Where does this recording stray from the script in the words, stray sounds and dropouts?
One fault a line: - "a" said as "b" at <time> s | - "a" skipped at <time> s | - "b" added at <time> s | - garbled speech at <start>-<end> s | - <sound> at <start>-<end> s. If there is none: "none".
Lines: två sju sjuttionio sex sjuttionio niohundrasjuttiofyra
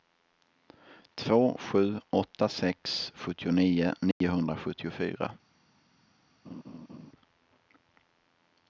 - "sjuttionio" said as "åtta" at 2.1 s
- dropout at 4.1-4.2 s
- laugh at 6.4-7.1 s